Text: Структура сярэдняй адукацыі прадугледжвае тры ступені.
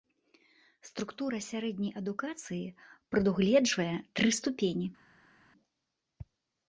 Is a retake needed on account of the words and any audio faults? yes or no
no